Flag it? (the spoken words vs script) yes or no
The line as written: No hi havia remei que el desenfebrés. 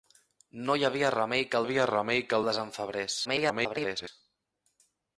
yes